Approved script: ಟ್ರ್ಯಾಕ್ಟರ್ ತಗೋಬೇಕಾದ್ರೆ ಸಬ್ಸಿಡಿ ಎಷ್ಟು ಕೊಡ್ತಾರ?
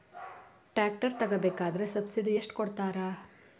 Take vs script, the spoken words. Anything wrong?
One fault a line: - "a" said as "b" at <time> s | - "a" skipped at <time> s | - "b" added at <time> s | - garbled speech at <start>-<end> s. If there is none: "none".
none